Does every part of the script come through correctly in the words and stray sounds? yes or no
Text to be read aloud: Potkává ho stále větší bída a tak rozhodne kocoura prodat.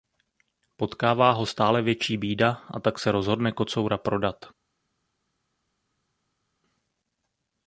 no